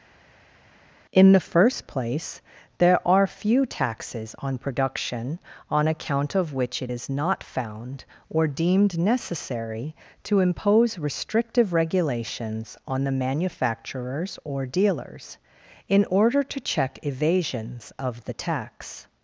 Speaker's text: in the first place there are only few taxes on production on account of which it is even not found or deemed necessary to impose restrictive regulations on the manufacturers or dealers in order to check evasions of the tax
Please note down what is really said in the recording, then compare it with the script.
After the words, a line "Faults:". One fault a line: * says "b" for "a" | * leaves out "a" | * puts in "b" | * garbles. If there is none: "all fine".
in the first place there are few taxes on production on account of which it is not found or deemed necessary to impose restrictive regulations on the manufacturers or dealers in order to check evasions of the tax
Faults:
* leaves out "only"
* leaves out "even"